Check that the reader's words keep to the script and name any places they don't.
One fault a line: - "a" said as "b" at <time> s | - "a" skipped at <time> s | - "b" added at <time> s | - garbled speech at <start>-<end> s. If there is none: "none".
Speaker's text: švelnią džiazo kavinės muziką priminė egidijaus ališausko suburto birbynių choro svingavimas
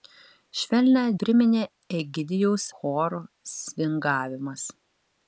- "džiazo kavinės muziką" skipped at 1.0 s
- "ališausko suburto birbynių" skipped at 2.7 s